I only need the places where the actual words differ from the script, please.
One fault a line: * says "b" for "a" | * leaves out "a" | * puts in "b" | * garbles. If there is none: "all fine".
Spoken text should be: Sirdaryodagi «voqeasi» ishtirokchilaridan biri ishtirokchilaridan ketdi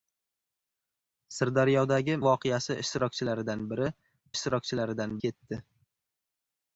all fine